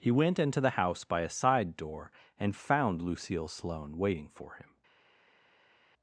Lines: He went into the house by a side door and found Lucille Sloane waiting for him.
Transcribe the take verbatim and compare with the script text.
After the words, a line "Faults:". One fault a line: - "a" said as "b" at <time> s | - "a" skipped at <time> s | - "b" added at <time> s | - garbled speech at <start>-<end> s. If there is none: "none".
He went into the house by a side door and found Lucille Sloane waiting for him.
Faults:
none